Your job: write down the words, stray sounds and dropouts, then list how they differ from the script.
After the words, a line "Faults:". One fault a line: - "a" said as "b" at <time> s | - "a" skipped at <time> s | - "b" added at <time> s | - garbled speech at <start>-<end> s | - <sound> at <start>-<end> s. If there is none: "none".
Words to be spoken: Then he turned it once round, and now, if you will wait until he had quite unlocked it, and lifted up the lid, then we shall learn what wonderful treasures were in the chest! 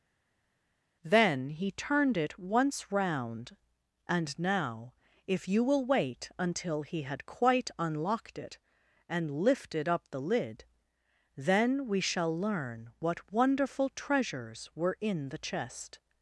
Then he turned it once round, and now, if you will wait until he had quite unlocked it, and lifted up the lid, then we shall learn what wonderful treasures were in the chest!
Faults:
none